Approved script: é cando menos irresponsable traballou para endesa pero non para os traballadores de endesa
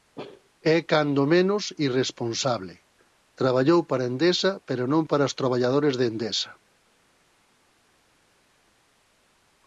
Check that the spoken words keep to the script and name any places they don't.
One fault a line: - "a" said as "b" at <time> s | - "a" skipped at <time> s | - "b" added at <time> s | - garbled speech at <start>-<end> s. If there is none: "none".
none